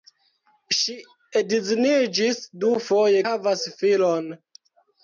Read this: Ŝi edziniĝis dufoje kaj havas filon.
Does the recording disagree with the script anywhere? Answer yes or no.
yes